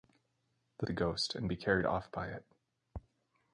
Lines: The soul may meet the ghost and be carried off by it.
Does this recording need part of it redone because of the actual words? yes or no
yes